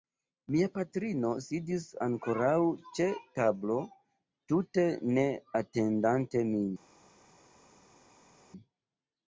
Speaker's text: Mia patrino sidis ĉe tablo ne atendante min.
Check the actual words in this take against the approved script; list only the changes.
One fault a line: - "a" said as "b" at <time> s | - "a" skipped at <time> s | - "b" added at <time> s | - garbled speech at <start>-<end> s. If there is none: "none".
- "ankoraŭ" added at 2.0 s
- "tute" added at 4.5 s